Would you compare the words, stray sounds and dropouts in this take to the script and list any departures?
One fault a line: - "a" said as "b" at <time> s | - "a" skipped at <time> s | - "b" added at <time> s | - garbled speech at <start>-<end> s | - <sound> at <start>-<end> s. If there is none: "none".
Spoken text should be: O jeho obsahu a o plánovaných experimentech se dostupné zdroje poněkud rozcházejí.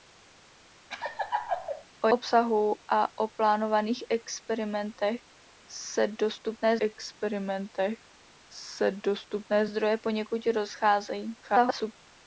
- laugh at 0.9-1.8 s
- "jeho" skipped at 2.1 s
- "experimentech se dostupné" added at 6.8 s
- garbled speech at 11.4-11.9 s